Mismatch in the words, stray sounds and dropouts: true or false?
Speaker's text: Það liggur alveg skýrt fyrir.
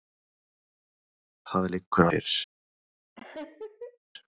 true